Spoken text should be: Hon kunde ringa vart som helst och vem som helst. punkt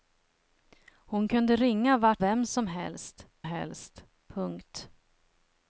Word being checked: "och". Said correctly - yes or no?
no